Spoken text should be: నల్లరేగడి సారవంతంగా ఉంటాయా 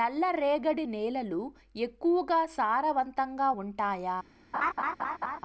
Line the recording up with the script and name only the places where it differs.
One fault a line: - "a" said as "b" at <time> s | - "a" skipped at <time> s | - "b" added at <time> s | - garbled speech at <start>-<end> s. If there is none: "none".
- "నేలలు ఎక్కువగా" added at 0.9 s